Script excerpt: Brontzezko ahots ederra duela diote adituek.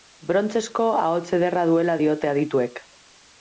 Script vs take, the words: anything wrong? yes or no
no